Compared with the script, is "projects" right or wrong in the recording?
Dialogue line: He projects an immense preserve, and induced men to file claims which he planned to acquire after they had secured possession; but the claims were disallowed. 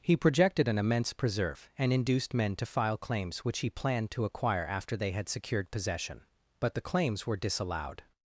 wrong